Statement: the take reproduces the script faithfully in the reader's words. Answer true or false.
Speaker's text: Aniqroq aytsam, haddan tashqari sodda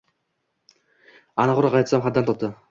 false